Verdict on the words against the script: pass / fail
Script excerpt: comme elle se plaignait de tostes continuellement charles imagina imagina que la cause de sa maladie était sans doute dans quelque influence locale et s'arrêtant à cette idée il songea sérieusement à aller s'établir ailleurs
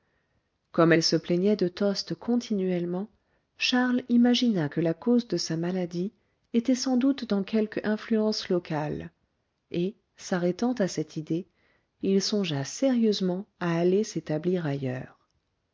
fail